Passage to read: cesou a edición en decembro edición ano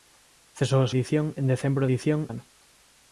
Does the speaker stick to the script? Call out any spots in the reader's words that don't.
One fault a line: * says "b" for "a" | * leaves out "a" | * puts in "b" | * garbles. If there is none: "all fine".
all fine